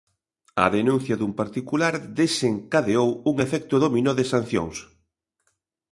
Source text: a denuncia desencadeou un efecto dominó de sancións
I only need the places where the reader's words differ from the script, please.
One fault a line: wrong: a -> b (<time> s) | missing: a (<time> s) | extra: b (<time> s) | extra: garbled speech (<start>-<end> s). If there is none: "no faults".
extra: dun particular (1.2 s)